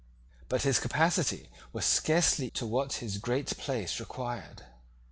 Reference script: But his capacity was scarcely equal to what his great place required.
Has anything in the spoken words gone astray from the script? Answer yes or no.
yes